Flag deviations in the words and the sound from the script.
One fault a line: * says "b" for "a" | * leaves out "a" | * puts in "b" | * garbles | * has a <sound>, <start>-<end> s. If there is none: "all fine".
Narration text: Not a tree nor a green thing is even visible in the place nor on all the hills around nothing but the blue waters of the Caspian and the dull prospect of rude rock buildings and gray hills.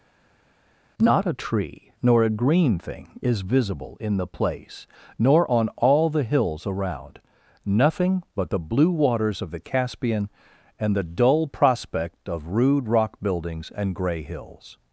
* leaves out "even"